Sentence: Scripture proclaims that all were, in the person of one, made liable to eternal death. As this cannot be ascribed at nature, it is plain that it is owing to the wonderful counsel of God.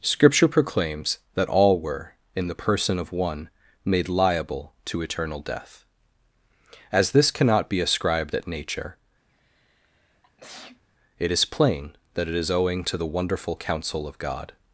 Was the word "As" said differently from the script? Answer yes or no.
no